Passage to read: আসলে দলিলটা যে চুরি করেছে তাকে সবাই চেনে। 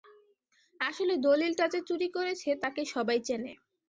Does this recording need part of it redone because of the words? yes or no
no